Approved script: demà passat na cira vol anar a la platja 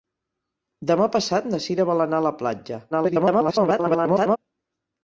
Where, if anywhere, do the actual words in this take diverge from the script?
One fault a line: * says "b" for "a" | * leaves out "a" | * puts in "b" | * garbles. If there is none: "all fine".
* garbles